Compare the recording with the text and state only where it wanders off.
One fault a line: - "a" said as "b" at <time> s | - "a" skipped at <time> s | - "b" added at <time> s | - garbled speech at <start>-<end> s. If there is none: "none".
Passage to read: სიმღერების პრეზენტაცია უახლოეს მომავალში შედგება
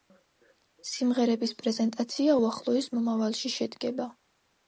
none